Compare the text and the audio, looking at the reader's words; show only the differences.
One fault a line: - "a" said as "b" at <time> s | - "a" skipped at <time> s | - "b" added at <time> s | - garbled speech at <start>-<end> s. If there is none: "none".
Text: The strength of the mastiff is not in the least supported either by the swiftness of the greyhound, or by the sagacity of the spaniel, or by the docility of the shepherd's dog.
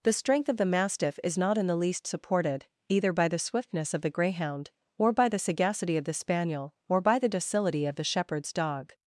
none